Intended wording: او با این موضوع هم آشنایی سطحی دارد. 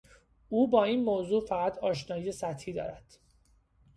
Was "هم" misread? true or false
true